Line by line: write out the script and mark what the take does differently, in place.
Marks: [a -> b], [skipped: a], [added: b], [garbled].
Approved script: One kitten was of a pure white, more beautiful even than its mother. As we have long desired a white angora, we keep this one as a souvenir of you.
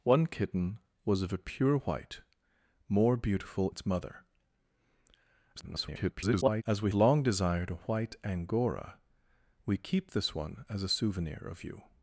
One kitten was of a pure white, more beautiful [skipped: even than] its mother. [garbled] As we [skipped: have] long desired a white angora, we keep this one as a souvenir of you.